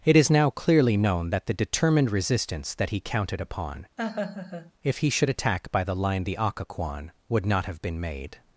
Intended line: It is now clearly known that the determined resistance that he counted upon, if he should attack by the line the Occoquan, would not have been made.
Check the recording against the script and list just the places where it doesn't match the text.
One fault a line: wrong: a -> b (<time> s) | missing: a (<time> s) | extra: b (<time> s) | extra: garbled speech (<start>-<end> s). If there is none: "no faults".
no faults